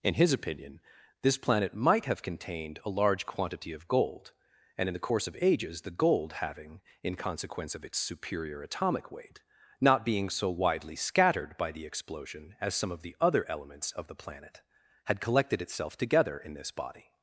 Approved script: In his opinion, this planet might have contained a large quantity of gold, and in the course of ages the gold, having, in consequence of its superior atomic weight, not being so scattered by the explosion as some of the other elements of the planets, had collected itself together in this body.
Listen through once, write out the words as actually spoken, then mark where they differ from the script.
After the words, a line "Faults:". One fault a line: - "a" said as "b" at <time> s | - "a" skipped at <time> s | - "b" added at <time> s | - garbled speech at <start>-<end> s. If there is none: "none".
In his opinion, this planet might have contained a large quantity of gold, and in the course of ages the gold, having, in consequence of its superior atomic weight, not being so widely scattered by the explosion as some of the other elements of the planet, had collected itself together in this body.
Faults:
- "widely" added at 10.5 s
- "planets" said as "planet" at 14.1 s